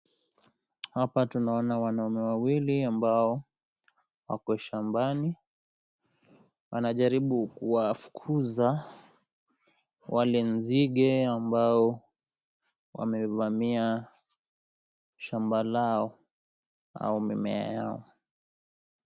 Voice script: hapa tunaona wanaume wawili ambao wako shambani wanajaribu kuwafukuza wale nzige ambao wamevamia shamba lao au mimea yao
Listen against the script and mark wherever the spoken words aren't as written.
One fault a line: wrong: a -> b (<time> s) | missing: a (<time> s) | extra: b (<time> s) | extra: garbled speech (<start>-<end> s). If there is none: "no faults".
no faults